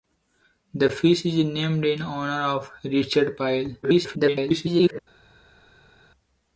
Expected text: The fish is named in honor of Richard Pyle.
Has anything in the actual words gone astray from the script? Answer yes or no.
yes